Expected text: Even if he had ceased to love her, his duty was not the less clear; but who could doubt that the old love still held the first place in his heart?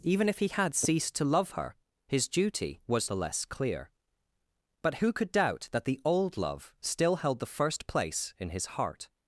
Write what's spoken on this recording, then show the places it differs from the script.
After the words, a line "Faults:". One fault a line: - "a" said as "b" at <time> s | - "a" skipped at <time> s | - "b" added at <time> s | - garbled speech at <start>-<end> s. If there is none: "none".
Even if he had ceased to love her, his duty was the less clear; but who could doubt that the old love still held the first place in his heart?
Faults:
- "not" skipped at 3.1 s